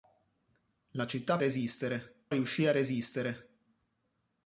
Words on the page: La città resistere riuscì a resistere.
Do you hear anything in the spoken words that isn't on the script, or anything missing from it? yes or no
no